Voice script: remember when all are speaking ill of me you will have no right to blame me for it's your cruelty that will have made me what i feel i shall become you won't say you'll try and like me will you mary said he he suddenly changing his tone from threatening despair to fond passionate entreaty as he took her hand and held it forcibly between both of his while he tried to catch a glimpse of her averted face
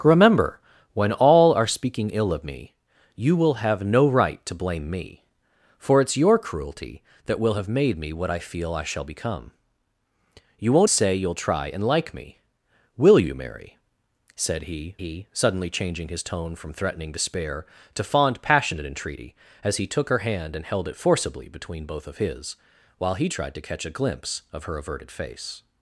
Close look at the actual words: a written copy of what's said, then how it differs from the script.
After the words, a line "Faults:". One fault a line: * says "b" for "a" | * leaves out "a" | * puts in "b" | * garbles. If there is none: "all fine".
remember when all are speaking ill of me you will have no right to blame me for it's your cruelty that will have made me what i feel i shall become you won't say you'll try and like me will you mary said he he suddenly changing his tone from threatening despair to fond passionate entreaty as he took her hand and held it forcibly between both of his while he tried to catch a glimpse of her averted face
Faults:
all fine